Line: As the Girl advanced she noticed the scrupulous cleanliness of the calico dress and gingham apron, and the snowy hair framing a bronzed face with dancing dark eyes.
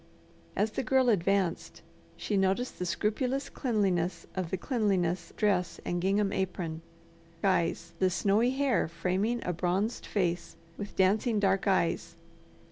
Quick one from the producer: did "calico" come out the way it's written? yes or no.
no